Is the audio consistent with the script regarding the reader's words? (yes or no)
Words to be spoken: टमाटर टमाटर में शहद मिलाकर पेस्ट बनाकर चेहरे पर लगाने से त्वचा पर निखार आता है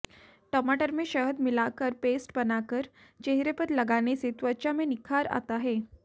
no